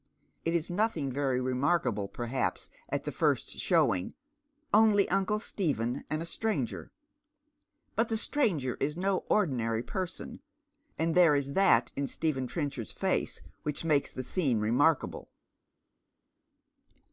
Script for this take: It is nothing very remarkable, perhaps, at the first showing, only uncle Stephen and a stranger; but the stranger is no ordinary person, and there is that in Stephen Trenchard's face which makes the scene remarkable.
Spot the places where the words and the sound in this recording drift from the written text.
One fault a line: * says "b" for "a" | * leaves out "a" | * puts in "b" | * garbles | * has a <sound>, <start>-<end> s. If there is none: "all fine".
all fine